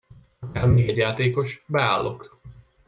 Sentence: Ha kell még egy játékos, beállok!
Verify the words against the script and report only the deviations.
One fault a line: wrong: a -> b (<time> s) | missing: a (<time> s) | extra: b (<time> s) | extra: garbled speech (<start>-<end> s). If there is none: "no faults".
no faults